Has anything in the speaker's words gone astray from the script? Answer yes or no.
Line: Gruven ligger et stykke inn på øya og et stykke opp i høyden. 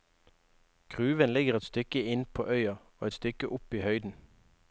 no